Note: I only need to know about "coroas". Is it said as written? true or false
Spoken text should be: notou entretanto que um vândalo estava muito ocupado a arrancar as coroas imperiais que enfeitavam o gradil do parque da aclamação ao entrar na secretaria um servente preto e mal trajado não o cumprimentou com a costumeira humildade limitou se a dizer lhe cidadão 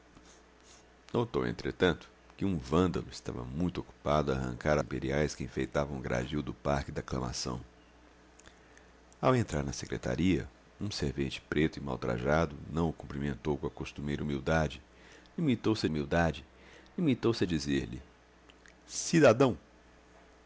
false